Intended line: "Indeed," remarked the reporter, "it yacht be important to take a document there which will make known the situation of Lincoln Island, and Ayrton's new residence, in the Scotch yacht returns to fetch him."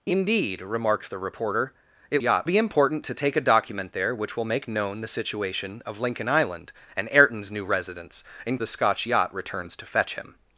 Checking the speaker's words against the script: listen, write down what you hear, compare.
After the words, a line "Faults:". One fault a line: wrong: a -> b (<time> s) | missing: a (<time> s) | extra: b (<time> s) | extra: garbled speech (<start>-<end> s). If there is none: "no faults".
"Indeed," remarked the reporter, "it yacht be important to take a document there which will make known the situation of Lincoln Island, and Ayrton's new residence, in the Scotch yacht returns to fetch him."
Faults:
no faults